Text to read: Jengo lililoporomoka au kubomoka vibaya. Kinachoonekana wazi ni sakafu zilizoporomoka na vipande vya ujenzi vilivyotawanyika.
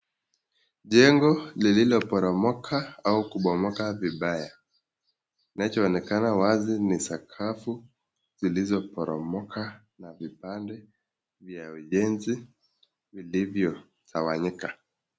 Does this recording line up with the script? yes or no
yes